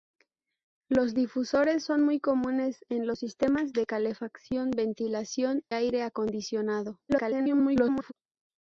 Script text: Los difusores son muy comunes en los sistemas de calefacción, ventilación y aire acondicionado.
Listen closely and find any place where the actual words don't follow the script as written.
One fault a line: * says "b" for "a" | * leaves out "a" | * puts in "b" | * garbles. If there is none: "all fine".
* leaves out "y"
* garbles